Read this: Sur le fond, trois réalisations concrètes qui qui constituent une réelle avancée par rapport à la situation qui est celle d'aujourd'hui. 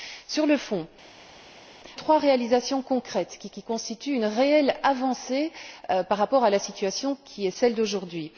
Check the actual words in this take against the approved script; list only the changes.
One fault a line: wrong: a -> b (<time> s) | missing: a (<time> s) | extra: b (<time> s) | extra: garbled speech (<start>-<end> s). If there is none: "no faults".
no faults